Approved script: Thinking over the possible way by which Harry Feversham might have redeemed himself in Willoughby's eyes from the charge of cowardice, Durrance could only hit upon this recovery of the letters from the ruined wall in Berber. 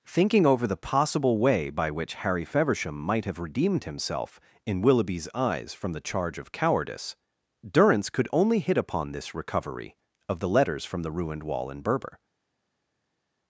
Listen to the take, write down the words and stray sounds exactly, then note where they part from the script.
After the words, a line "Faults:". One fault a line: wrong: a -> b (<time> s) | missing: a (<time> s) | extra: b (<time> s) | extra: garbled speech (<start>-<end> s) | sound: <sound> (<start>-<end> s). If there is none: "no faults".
Thinking over the possible way by which Harry Feversham might have redeemed himself in Willoughby's eyes from the charge of cowardice, Durrance could only hit upon this recovery of the letters from the ruined wall in Berber.
Faults:
no faults